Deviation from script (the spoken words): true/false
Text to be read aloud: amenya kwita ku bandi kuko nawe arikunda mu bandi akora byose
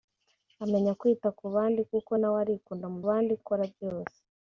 false